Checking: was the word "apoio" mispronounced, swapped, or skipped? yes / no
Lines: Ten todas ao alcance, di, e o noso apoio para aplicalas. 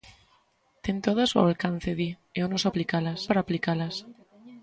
yes